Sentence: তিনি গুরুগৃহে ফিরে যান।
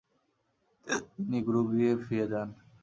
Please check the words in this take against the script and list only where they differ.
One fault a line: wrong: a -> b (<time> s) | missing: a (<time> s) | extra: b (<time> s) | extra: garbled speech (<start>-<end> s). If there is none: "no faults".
no faults